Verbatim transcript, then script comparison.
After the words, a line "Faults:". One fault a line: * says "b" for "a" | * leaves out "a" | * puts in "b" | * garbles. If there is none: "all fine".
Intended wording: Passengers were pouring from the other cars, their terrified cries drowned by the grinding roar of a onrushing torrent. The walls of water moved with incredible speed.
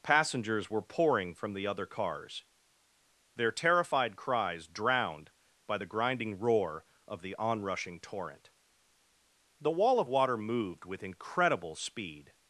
Passengers were pouring from the other cars, their terrified cries drowned by the grinding roar of the onrushing torrent. The wall of water moved with incredible speed.
Faults:
* says "the" for "a"
* says "wall" for "walls"